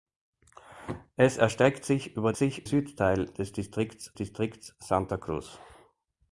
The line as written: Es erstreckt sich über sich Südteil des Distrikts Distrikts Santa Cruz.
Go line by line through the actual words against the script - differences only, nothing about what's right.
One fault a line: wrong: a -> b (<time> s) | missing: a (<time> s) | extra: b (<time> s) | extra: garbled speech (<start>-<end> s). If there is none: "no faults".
no faults